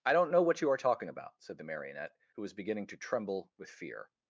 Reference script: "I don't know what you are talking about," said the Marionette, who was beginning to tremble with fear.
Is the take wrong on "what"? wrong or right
right